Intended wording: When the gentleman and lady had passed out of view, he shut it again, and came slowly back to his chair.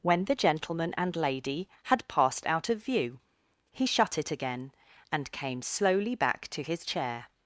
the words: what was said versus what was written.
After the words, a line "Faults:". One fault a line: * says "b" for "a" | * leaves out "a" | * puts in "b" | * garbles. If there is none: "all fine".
When the gentleman and lady had passed out of view, he shut it again, and came slowly back to his chair.
Faults:
all fine